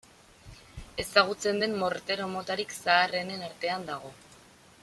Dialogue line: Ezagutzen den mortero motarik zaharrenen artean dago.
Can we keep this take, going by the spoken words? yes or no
yes